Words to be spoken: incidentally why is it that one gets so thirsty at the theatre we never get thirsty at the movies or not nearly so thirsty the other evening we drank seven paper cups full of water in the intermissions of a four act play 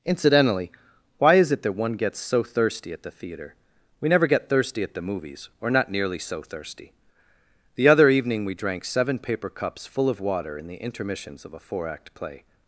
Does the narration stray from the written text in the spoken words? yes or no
no